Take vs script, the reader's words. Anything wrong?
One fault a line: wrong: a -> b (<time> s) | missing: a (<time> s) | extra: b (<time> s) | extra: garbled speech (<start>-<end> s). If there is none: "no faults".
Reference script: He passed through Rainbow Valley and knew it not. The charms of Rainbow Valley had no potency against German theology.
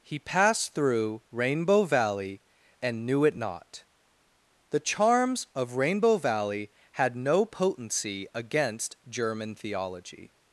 no faults